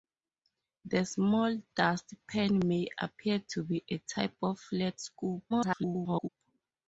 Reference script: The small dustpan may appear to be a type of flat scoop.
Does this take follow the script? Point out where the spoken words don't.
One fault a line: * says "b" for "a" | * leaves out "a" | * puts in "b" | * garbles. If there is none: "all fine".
* garbles